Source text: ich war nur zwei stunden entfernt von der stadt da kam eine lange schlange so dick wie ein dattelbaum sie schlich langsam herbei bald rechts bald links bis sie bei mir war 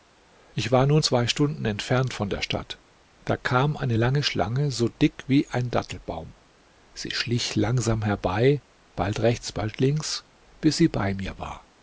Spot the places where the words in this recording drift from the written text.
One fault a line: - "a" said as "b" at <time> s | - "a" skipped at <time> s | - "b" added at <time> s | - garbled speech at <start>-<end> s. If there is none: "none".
none